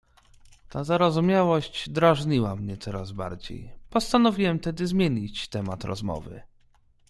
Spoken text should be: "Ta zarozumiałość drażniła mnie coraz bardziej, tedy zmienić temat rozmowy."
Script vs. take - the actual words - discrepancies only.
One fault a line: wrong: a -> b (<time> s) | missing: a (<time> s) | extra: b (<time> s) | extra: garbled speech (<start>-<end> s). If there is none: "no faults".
extra: postanowiłem (3.9 s)